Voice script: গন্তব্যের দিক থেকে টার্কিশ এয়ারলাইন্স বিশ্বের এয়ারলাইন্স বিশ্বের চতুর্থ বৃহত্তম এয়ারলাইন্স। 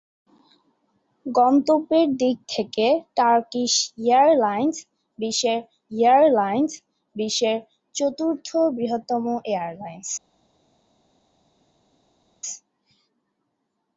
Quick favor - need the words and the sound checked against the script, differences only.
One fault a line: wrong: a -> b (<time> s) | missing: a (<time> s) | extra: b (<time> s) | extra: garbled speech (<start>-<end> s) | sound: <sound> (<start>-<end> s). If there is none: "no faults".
no faults